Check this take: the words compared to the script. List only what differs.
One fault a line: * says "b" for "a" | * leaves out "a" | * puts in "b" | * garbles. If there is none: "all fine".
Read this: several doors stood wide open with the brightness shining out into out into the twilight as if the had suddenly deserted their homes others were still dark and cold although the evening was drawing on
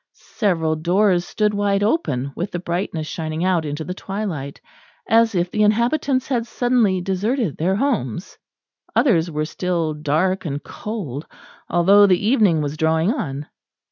* leaves out "out into"
* puts in "inhabitants"